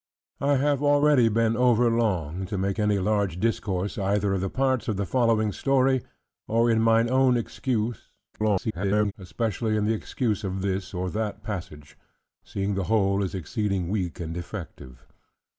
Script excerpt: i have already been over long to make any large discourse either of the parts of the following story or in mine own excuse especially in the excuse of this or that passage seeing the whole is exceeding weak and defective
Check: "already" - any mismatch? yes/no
no